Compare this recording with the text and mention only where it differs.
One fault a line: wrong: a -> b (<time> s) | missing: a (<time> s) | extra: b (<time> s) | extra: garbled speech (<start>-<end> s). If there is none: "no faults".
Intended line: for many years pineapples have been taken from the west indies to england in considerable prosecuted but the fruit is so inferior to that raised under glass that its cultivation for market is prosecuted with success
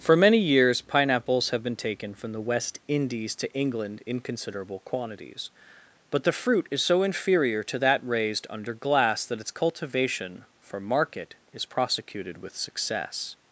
wrong: prosecuted -> quantities (4.8 s)